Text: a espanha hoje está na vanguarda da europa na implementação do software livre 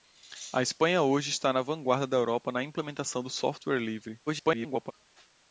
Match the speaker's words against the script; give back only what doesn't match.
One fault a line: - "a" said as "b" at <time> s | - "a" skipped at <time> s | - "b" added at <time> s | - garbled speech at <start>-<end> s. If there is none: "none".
- garbled speech at 4.3-4.9 s